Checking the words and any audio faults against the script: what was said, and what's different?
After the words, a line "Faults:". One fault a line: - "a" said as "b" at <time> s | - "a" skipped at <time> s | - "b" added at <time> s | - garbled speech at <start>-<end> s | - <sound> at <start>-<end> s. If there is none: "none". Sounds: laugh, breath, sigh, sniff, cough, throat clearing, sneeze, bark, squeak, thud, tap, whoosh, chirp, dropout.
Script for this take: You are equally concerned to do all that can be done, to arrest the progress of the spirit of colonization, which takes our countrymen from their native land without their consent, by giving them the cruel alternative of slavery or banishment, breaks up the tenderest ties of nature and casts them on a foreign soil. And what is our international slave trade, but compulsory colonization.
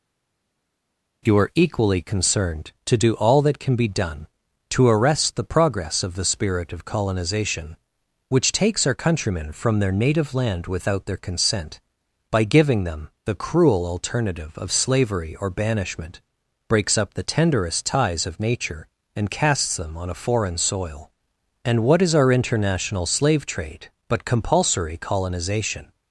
You are equally concerned to do all that can be done, to arrest the progress of the spirit of colonization, which takes our countrymen from their native land without their consent, by giving them the cruel alternative of slavery or banishment, breaks up the tenderest ties of nature and casts them on a foreign soil. And what is our international slave trade, but compulsory colonization.
Faults:
none